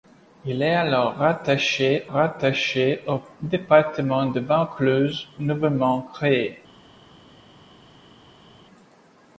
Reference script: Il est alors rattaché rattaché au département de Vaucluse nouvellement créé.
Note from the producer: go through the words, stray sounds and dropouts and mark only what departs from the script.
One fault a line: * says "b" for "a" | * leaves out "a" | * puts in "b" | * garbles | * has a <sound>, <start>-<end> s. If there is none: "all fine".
all fine